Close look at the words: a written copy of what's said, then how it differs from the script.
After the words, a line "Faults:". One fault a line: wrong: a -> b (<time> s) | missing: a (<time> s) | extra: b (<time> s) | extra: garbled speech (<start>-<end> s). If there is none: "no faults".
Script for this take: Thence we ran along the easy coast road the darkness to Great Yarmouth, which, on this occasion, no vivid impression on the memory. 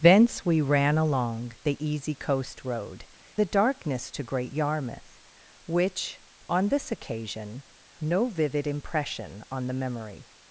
Thence we ran along the easy coast road the darkness to Great Yarmouth, which, on this occasion, no vivid impression on the memory.
Faults:
no faults